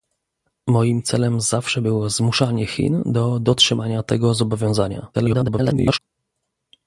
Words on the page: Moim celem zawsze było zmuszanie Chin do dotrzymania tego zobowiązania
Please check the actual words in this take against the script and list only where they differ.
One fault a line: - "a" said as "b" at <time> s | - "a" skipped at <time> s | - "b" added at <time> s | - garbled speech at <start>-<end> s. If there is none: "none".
- garbled speech at 5.1-6.0 s